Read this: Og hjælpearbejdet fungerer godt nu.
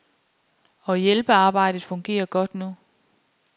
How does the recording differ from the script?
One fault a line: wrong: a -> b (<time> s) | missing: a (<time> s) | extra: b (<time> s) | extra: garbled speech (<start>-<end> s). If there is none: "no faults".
no faults